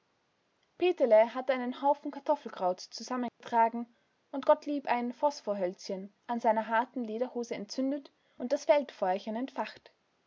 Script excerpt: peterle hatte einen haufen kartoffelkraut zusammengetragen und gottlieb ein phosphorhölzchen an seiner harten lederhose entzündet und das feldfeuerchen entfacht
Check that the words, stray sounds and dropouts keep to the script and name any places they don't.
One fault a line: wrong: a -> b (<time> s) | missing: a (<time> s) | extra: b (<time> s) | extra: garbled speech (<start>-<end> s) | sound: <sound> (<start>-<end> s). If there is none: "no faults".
sound: dropout (3.3-3.4 s)